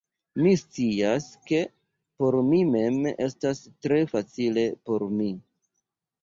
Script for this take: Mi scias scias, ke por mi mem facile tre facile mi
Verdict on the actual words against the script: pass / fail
fail